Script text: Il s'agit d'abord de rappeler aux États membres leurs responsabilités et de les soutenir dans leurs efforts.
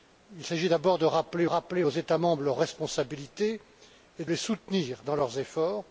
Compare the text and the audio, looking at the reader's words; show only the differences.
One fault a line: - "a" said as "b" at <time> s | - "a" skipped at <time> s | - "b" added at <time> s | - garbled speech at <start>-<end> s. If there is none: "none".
- "rappeler" added at 1.4 s
- "de" skipped at 4.2 s